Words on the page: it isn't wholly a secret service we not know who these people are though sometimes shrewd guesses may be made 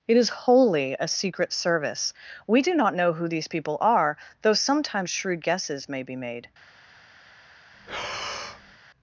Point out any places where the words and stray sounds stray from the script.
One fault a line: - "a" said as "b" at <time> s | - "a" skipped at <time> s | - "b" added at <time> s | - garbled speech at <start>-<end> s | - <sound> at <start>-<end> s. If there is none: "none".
- "isn't" said as "is" at 0.2 s
- "do" added at 2.6 s
- breath at 7.7-8.8 s